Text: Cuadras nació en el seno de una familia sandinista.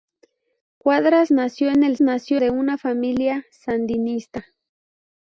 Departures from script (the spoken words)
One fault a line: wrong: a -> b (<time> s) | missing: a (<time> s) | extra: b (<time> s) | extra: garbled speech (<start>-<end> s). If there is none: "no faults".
wrong: seno -> nació (2.0 s)